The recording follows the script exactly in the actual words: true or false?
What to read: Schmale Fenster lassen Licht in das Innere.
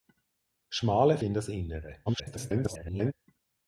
false